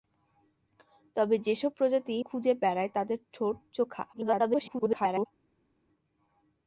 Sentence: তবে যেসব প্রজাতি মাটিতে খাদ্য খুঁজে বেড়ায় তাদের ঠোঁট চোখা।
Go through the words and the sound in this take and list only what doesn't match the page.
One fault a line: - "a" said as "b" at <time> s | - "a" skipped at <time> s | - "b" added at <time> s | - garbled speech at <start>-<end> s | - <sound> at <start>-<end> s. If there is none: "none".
- "মাটিতে খাদ্য" skipped at 2.1 s
- garbled speech at 4.1-5.3 s